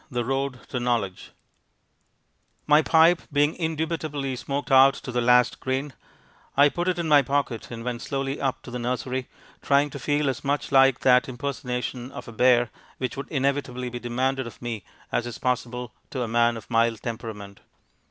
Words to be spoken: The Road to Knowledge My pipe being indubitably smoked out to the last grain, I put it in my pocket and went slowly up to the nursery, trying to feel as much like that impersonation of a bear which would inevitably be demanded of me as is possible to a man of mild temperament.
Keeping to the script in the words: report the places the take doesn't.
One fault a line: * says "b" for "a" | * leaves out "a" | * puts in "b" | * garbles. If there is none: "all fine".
all fine